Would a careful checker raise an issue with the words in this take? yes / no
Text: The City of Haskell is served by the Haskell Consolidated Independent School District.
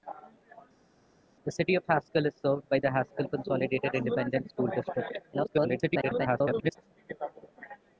yes